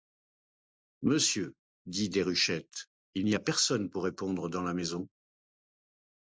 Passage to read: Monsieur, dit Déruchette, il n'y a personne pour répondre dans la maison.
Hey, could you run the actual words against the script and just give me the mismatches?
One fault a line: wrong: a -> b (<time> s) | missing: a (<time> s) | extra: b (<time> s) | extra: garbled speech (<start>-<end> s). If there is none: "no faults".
no faults